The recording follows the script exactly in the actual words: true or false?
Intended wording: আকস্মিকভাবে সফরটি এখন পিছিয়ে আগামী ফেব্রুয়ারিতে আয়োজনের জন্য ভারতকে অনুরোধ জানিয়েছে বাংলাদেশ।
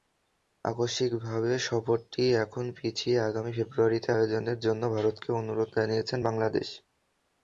true